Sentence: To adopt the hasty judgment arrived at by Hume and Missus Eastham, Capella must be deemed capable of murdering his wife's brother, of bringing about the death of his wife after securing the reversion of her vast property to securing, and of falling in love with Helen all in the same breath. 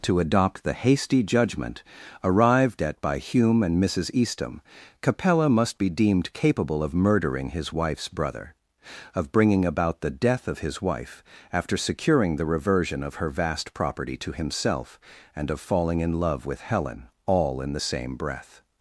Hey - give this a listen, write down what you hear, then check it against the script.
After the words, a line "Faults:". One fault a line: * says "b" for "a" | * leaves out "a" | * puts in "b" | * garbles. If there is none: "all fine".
To adopt the hasty judgment arrived at by Hume and Missus Eastham, Capella must be deemed capable of murdering his wife's brother, of bringing about the death of his wife after securing the reversion of her vast property to himself, and of falling in love with Helen all in the same breath.
Faults:
* says "himself" for "securing"